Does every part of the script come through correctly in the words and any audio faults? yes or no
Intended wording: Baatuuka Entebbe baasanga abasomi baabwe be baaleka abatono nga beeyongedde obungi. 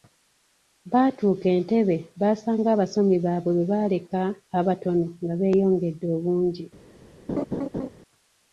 no